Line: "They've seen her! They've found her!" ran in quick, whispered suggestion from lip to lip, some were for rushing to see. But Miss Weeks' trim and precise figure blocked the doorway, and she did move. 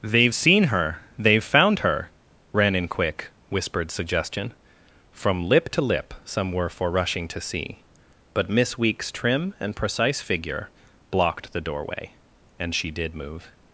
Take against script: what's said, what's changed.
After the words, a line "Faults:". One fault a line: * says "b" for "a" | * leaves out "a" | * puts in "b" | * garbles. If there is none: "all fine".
"They've seen her! They've found her!" ran in quick, whispered suggestion from lip to lip, some were for rushing to see. But Miss Weeks' trim and precise figure blocked the doorway, and she did move.
Faults:
all fine